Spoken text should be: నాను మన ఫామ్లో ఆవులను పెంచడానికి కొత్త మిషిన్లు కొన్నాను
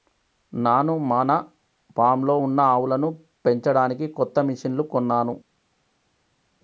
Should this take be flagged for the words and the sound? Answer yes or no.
yes